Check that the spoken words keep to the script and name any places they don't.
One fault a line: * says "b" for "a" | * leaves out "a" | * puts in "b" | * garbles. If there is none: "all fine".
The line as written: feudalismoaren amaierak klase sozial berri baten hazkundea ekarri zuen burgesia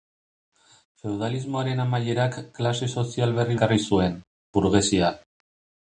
* leaves out "baten hazkundea"